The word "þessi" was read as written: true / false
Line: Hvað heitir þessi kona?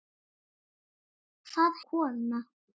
false